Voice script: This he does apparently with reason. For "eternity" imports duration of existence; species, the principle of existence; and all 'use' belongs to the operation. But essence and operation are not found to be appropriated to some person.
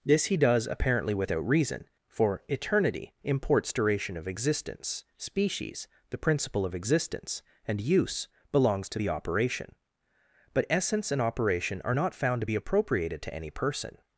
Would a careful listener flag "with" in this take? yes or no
yes